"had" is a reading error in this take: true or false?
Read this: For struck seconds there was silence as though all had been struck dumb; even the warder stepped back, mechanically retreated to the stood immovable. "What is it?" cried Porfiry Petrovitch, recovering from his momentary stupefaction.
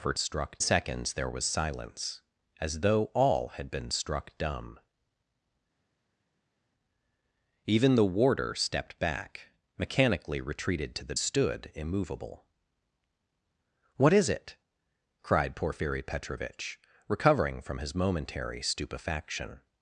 false